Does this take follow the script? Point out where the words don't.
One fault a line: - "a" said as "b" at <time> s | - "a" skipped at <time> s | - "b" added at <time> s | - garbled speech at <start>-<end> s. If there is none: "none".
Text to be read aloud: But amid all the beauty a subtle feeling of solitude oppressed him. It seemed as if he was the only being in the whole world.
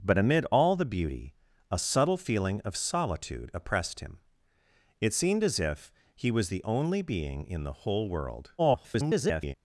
- garbled speech at 8.6-9.5 s